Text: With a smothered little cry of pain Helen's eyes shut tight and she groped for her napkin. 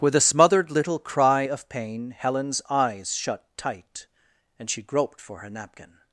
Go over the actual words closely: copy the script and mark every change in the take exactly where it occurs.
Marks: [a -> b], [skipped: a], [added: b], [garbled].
With a smothered little cry of pain Helen's eyes shut tight and she groped for her napkin.